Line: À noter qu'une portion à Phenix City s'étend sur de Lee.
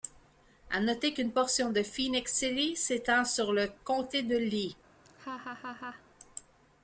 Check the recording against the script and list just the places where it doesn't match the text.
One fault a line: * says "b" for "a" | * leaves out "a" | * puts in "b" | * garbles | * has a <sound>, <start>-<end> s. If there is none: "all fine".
* says "de" for "à"
* puts in "le comté"
* has a laugh, 5.0-6.0 s